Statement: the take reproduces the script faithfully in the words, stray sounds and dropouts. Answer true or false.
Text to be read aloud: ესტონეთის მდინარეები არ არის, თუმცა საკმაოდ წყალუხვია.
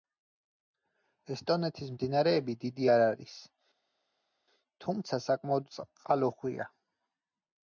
false